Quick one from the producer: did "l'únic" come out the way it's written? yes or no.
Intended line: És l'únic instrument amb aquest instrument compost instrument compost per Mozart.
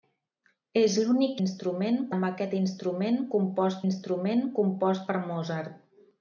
yes